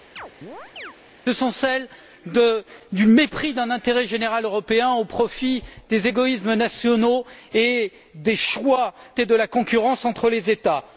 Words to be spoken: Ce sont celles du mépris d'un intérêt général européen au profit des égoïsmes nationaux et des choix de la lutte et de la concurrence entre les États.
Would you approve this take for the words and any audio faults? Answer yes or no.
no